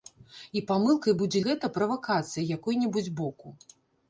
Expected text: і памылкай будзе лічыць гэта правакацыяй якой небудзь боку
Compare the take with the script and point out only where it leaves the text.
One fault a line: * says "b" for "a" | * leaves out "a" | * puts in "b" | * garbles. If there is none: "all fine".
* leaves out "лічыць"